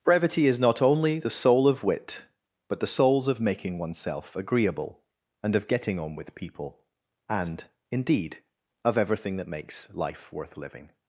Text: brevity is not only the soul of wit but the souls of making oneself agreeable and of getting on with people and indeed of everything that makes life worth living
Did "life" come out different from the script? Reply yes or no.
no